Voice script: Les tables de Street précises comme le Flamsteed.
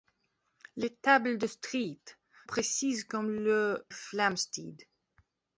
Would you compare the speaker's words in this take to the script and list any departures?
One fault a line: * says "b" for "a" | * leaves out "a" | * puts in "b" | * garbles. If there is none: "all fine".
all fine